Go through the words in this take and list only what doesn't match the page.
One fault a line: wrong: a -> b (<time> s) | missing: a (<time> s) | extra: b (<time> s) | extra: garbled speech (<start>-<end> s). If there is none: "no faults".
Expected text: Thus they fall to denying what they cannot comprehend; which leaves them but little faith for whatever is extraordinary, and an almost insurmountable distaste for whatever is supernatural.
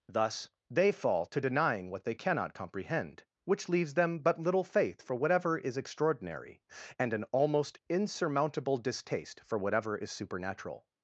no faults